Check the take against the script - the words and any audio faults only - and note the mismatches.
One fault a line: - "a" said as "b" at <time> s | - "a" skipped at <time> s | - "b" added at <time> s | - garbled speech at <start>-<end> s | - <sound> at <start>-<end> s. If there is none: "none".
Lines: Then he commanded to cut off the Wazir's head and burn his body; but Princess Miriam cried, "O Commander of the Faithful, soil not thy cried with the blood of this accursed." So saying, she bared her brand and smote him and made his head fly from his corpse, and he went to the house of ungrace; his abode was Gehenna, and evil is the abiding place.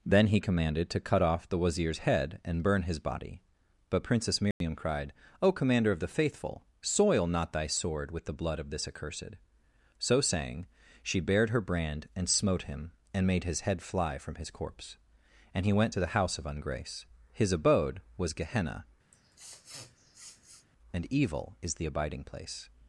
- dropout at 4.5-4.6 s
- "cried" said as "sword" at 7.7 s
- sniff at 19.1-20.7 s